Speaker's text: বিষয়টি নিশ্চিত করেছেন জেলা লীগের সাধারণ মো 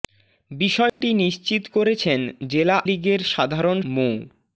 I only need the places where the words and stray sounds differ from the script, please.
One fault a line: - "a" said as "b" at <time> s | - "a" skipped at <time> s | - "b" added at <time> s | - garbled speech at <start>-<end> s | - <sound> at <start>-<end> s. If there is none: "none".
- dropout at 0.9-1.0 s